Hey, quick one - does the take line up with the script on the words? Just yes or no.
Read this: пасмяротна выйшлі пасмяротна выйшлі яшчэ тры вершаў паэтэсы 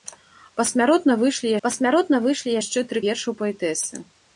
yes